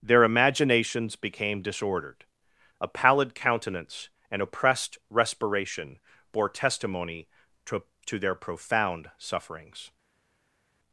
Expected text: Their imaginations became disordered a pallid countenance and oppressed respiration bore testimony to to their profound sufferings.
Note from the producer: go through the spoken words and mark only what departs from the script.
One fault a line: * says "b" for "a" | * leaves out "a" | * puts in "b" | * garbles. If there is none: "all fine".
all fine